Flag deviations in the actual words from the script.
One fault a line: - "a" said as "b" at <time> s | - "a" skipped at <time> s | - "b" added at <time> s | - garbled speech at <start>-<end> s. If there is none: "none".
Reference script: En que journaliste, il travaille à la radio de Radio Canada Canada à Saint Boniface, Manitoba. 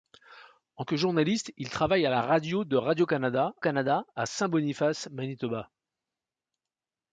none